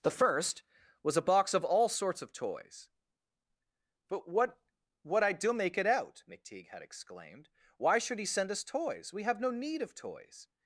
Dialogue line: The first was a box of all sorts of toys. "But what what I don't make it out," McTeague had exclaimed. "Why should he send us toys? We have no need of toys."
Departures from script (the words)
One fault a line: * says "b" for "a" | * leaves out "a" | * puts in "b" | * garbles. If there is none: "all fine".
* says "do" for "don't"